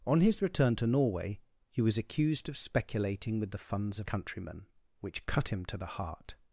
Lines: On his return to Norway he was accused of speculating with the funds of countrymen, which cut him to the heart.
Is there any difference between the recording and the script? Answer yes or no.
no